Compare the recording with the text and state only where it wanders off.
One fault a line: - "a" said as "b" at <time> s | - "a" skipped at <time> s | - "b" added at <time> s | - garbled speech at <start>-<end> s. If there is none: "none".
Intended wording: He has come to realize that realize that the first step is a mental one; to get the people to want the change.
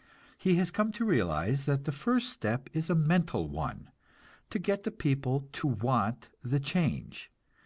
- "realize that" skipped at 1.8 s